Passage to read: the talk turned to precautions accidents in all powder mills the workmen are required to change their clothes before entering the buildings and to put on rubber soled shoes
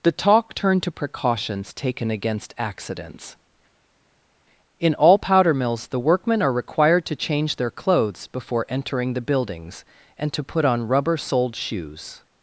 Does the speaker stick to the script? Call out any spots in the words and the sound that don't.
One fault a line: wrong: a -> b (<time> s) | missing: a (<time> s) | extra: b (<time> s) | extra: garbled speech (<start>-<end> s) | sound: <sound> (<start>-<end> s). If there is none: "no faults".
extra: taken against (1.8 s)